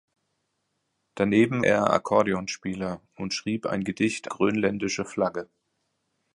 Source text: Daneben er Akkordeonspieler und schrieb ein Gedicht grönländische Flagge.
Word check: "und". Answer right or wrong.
right